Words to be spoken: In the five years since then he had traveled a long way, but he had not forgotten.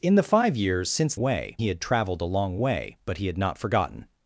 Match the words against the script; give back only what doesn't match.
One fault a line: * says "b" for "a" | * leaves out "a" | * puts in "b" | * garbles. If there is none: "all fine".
* says "way" for "then"